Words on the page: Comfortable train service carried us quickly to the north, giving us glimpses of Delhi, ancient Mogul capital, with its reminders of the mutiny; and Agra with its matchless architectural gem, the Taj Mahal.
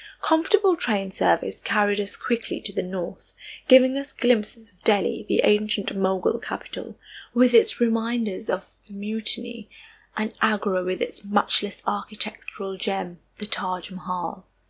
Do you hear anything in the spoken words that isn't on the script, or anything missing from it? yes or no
yes